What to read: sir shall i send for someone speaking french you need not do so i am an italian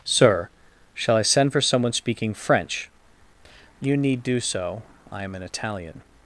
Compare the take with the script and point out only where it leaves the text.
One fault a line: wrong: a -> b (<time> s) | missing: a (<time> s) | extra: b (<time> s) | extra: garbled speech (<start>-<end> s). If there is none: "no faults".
missing: not (4.2 s)